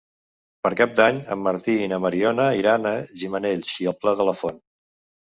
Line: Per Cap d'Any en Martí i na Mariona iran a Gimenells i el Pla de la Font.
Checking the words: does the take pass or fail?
pass